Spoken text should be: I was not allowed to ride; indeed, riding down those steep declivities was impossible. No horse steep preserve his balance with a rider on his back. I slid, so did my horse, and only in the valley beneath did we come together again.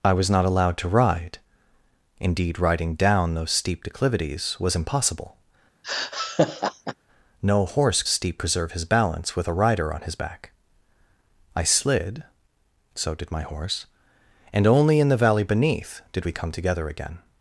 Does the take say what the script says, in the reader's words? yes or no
yes